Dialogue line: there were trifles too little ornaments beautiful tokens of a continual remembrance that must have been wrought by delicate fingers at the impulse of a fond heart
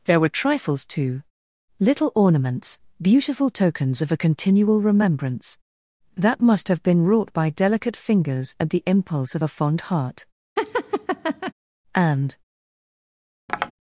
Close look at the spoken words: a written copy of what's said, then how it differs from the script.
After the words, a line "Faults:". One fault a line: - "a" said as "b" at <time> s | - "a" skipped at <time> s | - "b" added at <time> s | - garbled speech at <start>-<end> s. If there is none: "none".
there were trifles too little ornaments beautiful tokens of a continual remembrance that must have been wrought by delicate fingers at the impulse of a fond heart and
Faults:
- "and" added at 11.9 s